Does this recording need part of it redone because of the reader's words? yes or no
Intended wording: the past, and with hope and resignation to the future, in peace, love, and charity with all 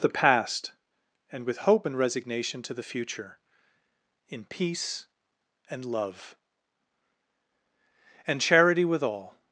yes